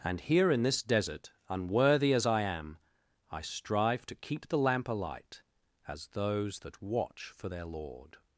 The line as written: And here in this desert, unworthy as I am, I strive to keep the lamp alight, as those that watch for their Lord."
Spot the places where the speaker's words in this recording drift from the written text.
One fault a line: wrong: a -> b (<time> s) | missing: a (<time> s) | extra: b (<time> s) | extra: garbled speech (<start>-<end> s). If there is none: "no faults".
no faults